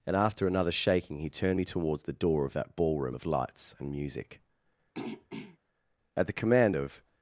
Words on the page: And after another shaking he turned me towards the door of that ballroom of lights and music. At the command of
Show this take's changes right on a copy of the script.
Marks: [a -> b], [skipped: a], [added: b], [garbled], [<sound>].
And after another shaking he turned me towards the door of that ballroom of lights and music. [throat clearing] At the command of